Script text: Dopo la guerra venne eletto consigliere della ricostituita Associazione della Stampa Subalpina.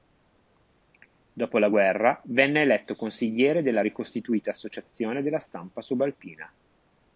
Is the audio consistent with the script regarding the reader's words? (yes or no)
yes